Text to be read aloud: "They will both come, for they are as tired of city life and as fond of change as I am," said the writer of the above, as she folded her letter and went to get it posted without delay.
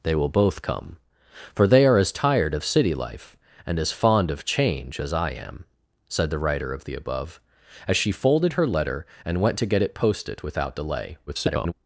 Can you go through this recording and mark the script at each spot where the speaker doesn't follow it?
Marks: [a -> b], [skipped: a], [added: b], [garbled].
"They will both come, for they are as tired of city life and as fond of change as I am," said the writer of the above, as she folded her letter and went to get it posted without delay. [garbled]